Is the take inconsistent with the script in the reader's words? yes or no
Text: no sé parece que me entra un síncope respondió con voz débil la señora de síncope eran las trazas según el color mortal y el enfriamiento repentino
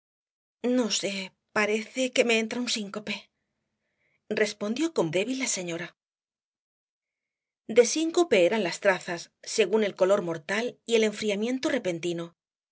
yes